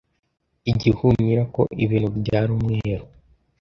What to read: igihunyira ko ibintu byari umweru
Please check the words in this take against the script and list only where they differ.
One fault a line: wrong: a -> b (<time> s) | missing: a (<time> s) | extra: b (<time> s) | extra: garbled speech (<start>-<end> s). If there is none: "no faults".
no faults